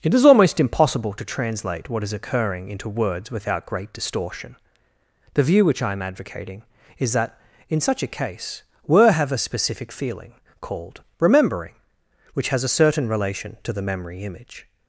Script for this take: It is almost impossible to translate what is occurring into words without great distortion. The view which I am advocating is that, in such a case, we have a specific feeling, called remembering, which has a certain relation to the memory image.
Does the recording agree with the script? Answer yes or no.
no